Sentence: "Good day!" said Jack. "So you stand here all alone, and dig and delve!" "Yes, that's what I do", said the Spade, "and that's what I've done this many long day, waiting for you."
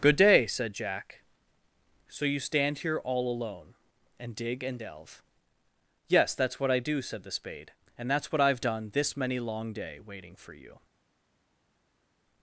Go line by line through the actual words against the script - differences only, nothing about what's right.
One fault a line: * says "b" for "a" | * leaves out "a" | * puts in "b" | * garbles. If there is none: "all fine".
all fine